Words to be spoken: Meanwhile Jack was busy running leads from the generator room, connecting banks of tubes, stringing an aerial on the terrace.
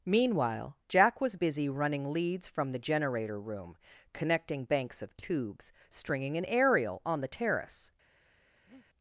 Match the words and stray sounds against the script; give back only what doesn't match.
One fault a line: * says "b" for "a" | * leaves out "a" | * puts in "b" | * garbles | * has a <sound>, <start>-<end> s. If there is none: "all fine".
* has a breath, 8.7-8.9 s